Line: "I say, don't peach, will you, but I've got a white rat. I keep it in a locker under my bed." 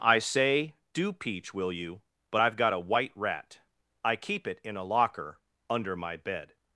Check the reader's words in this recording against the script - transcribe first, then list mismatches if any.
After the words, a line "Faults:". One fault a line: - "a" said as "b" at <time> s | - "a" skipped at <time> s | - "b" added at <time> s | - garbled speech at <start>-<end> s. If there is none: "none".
"I say, do peach, will you, but I've got a white rat. I keep it in a locker under my bed."
Faults:
- "don't" said as "do" at 0.9 s